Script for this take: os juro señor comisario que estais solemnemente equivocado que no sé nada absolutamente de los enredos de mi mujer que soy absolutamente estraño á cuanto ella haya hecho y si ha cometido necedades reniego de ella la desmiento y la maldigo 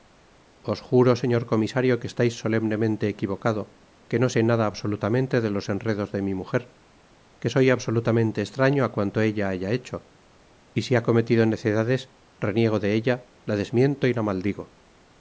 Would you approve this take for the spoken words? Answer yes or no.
yes